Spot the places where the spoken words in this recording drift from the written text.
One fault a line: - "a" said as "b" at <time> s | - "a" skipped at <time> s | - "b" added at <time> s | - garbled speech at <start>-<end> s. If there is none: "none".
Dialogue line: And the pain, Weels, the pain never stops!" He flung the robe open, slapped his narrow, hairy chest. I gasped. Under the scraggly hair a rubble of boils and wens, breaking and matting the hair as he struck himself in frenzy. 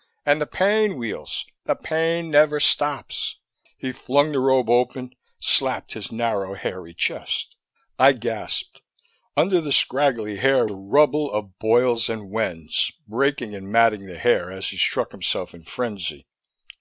none